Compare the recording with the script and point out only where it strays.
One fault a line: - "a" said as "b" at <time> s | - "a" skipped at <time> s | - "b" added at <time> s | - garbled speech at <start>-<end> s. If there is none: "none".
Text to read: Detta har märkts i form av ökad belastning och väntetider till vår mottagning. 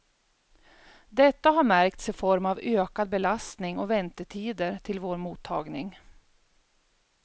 none